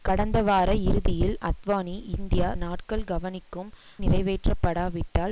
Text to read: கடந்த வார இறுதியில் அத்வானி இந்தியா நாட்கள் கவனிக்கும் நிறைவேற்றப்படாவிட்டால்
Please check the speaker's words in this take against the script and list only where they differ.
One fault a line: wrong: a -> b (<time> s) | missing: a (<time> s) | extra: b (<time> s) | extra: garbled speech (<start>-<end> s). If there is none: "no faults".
no faults